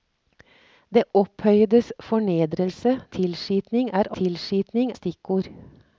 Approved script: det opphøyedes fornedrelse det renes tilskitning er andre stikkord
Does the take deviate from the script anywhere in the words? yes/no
yes